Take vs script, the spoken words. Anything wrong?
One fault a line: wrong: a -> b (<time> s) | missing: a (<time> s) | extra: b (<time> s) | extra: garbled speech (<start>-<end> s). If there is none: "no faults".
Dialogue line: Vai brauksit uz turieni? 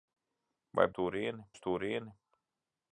wrong: brauksit -> turieni (1.0 s)